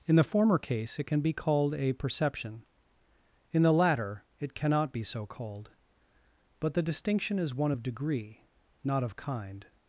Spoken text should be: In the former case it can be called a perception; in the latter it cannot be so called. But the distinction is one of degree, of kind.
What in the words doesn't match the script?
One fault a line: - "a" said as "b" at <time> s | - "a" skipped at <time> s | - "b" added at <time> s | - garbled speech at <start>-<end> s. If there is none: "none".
- "not" added at 8.8 s